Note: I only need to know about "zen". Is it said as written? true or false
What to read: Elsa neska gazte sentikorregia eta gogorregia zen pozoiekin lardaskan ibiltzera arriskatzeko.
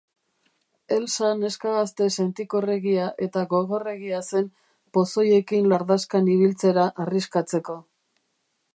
true